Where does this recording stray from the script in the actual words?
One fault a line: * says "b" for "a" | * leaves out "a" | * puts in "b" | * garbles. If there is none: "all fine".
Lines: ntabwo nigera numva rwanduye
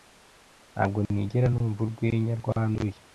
* puts in "urwenya"